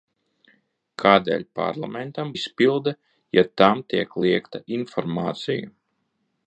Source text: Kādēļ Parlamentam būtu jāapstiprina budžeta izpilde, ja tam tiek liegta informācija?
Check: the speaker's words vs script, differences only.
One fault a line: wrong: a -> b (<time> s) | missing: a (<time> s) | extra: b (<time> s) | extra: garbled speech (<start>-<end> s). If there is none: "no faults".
missing: būtu jāapstiprina budžeta (2.3 s)